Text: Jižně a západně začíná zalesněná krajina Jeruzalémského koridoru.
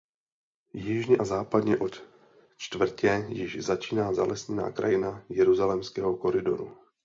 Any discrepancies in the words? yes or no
yes